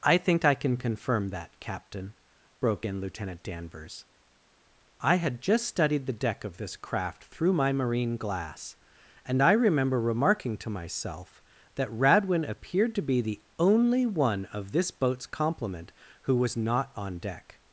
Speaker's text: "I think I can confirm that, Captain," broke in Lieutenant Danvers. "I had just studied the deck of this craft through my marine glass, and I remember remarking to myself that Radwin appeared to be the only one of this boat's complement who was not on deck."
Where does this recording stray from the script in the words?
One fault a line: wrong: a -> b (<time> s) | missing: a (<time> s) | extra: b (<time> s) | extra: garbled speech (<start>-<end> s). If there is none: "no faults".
no faults